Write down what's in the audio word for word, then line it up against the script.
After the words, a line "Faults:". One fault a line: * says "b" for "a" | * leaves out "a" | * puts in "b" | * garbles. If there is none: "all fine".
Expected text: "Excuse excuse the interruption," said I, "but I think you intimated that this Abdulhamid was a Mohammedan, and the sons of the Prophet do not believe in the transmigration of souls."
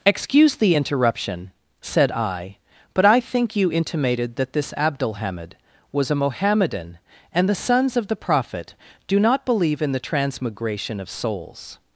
"Excuse the interruption," said I, "but I think you intimated that this Abdulhamid was a Mohammedan, and the sons of the Prophet do not believe in the transmigration of souls."
Faults:
* leaves out "excuse"